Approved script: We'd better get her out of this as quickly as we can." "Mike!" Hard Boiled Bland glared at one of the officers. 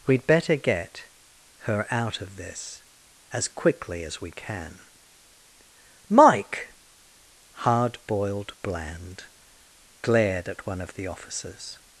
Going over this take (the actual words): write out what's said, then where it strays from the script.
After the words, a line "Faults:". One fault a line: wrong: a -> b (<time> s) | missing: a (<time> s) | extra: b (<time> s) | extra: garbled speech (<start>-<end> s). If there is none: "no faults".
We'd better get her out of this as quickly as we can." "Mike!" Hard Boiled Bland glared at one of the officers.
Faults:
no faults